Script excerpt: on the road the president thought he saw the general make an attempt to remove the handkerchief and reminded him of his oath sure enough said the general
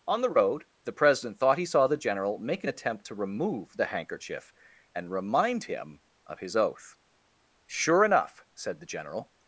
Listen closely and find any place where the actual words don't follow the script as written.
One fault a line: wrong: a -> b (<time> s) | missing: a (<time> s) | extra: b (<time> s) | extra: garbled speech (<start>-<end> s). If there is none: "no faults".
wrong: reminded -> remind (5.1 s)